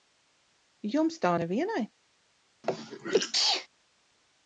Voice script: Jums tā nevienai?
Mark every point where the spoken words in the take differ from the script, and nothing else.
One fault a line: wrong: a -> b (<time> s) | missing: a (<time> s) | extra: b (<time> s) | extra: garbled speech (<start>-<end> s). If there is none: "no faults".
no faults